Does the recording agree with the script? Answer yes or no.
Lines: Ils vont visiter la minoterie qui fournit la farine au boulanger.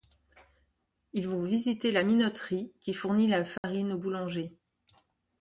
yes